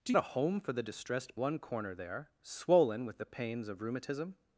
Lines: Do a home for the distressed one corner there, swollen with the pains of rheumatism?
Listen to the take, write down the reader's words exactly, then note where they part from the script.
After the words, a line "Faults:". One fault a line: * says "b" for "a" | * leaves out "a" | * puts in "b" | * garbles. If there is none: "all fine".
Do a home for the distressed one corner there, swollen with the pains of rheumatism?
Faults:
all fine